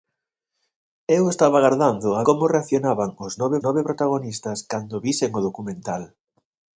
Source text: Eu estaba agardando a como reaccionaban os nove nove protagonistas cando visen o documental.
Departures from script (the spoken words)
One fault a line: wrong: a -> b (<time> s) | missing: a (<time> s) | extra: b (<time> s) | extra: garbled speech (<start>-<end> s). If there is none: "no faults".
no faults